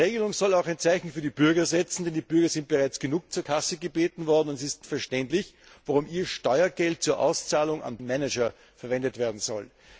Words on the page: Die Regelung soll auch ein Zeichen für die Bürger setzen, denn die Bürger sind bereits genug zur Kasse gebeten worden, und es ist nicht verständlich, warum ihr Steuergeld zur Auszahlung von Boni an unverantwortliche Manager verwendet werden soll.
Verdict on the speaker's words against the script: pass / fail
fail